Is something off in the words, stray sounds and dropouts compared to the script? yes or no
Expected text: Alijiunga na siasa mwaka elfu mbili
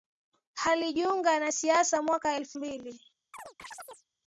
yes